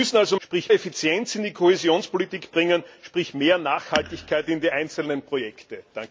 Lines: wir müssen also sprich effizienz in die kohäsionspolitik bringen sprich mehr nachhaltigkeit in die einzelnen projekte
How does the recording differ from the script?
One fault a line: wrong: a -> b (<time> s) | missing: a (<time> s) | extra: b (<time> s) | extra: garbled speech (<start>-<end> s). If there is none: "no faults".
no faults